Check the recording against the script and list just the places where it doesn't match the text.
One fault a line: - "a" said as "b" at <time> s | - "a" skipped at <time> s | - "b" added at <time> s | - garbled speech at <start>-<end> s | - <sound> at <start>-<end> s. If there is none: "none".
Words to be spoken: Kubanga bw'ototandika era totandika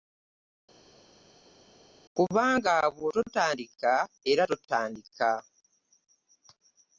none